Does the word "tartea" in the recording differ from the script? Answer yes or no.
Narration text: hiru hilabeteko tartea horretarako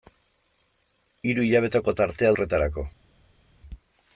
no